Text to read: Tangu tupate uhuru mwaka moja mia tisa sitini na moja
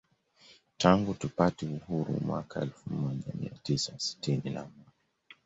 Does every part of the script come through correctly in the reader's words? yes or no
no